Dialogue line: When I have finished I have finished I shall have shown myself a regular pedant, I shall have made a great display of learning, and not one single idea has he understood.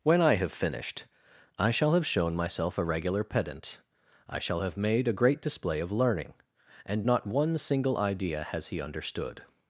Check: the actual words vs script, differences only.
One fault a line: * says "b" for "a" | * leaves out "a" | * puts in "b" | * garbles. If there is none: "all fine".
* leaves out "have finished I"